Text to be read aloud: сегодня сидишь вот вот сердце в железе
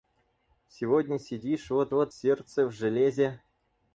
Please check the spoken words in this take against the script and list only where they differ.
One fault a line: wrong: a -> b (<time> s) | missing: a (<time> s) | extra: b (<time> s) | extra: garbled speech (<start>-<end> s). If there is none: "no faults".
no faults